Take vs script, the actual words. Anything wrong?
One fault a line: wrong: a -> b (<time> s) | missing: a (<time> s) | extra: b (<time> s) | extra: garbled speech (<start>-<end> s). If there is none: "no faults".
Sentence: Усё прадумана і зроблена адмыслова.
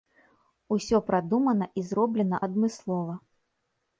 no faults